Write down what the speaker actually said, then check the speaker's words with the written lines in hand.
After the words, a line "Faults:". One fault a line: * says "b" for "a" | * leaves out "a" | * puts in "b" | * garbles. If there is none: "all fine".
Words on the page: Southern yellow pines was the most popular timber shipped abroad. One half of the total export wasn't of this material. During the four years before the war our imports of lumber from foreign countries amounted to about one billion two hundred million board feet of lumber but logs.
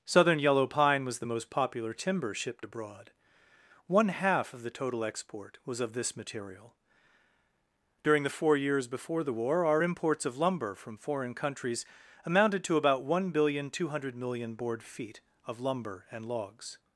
Southern yellow pine was the most popular timber shipped abroad. One half of the total export was of this material. During the four years before the war our imports of lumber from foreign countries amounted to about one billion two hundred million board feet of lumber and logs.
Faults:
* says "pine" for "pines"
* says "was" for "wasn't"
* says "and" for "but"